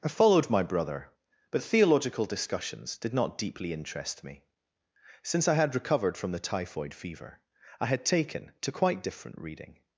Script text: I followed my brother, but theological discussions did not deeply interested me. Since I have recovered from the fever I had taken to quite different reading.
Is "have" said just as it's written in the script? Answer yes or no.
no